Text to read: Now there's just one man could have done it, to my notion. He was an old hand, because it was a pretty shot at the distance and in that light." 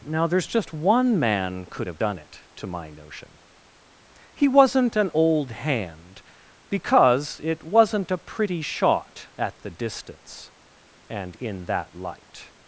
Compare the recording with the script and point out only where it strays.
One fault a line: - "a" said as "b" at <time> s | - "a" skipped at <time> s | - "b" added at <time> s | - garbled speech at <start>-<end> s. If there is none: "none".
- "was" said as "wasn't" at 4.5 s
- "was" said as "wasn't" at 7.6 s